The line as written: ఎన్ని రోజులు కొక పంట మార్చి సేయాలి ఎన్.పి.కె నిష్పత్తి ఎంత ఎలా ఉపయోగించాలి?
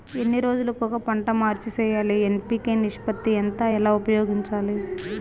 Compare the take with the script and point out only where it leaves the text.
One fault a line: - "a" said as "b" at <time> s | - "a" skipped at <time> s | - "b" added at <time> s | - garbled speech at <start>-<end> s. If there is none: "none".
none